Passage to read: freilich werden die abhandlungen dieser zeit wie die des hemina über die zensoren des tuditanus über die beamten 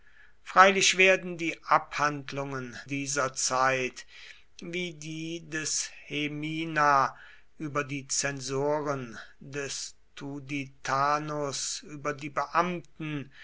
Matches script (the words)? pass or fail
pass